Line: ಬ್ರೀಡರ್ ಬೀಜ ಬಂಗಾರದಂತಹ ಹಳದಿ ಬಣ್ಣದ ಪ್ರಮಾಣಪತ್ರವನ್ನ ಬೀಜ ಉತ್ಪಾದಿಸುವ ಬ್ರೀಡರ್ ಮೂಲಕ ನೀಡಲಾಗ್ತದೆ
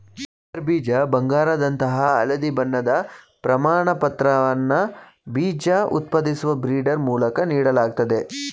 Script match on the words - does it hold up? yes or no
yes